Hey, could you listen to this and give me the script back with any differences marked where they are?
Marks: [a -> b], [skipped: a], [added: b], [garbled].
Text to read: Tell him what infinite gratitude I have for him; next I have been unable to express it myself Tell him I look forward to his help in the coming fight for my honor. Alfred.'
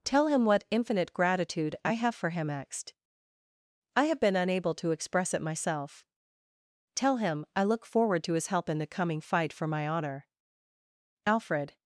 Tell him what infinite gratitude I have for him; next I have been unable to express it myself Tell him I look forward to his help in the coming fight for my honor. Alfred.'